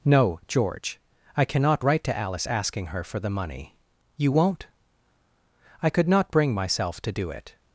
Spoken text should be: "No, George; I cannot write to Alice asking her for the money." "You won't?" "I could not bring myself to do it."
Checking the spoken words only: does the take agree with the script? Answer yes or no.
yes